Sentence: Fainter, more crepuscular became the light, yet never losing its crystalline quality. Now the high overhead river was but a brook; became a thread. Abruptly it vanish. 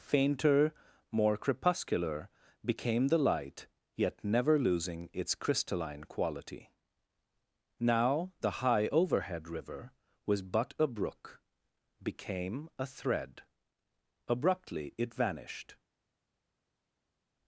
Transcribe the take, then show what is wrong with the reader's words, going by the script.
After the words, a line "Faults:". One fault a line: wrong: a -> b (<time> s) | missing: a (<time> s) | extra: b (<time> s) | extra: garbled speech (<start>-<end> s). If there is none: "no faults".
Fainter, more crepuscular became the light, yet never losing its crystalline quality. Now the high overhead river was but a brook; became a thread. Abruptly it vanished.
Faults:
wrong: vanish -> vanished (15.1 s)